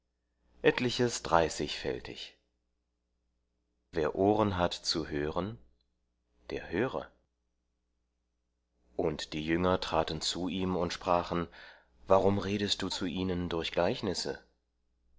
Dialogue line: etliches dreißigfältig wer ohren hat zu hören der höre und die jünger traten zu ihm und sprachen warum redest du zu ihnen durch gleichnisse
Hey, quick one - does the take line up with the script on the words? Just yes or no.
yes